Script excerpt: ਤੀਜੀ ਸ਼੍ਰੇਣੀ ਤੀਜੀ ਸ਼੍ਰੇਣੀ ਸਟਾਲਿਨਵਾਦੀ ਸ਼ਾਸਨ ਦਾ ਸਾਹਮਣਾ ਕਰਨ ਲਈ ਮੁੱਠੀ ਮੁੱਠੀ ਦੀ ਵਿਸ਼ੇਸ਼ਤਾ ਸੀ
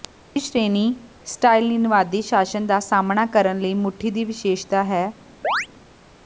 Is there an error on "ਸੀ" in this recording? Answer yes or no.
yes